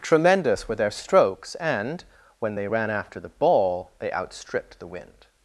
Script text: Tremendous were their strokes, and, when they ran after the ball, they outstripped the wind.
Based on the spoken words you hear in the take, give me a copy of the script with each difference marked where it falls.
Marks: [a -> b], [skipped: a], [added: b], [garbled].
Tremendous were their strokes, and, when they ran after the ball, they outstripped the wind.